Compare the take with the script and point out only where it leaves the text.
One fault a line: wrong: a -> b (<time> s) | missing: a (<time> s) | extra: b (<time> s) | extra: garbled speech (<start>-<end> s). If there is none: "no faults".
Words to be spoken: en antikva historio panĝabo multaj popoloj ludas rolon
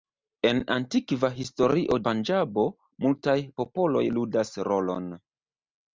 no faults